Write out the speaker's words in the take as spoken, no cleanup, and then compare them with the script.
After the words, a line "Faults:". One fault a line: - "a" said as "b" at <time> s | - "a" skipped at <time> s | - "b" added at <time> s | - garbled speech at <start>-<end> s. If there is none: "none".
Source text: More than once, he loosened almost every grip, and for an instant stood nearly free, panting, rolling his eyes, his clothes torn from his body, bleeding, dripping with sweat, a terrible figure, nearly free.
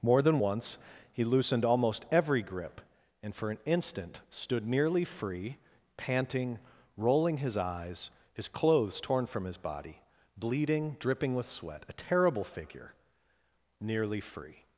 More than once, he loosened almost every grip, and for an instant stood nearly free, panting, rolling his eyes, his clothes torn from his body, bleeding, dripping with sweat, a terrible figure, nearly free.
Faults:
none